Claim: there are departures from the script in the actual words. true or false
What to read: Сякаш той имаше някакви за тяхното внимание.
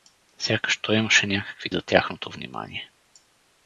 false